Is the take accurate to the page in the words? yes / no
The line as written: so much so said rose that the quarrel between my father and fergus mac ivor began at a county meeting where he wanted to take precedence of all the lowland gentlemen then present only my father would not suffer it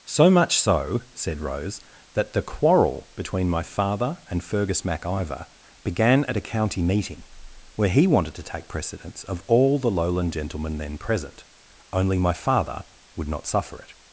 yes